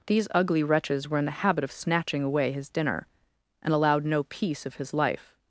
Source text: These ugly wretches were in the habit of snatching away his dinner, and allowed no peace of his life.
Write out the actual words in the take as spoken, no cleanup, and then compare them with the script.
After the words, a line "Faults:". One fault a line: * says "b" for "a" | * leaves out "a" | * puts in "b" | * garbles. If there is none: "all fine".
These ugly wretches were in the habit of snatching away his dinner, and allowed no peace of his life.
Faults:
all fine